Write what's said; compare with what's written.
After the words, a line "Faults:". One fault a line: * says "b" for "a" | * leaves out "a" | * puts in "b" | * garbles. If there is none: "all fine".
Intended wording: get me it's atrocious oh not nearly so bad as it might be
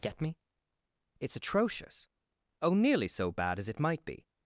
get me it's atrocious oh nearly so bad as it might be
Faults:
* leaves out "not"